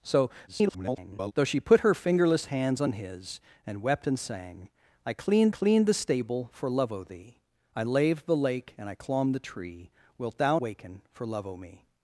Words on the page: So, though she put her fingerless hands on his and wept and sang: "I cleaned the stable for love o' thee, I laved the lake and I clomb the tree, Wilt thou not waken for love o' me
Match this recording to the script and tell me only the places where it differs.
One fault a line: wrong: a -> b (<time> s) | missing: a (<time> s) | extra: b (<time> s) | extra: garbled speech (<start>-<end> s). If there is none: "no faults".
extra: garbled speech (0.5-1.3 s)
extra: cleaned (5.5 s)
missing: not (10.6 s)